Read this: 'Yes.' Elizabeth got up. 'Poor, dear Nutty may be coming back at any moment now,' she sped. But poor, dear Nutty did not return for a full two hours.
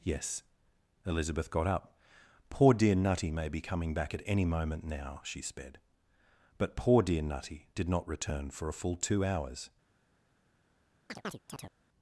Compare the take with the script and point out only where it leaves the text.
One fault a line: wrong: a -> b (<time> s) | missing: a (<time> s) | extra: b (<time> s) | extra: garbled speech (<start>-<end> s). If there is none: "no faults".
no faults